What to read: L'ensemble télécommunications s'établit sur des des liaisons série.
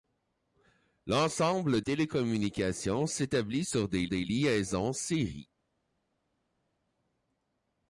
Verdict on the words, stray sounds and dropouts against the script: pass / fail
pass